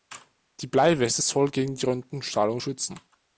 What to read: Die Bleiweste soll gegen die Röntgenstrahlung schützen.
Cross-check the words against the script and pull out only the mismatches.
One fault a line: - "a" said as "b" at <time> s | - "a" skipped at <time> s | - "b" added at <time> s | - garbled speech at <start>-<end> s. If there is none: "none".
none